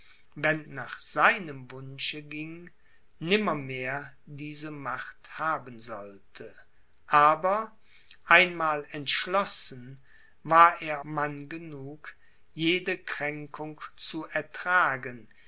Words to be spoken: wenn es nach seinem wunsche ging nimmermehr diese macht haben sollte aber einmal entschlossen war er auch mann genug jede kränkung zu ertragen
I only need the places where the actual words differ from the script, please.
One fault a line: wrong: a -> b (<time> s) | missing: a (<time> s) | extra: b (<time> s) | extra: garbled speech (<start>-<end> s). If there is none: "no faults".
missing: es (0.7 s)
missing: auch (11.0 s)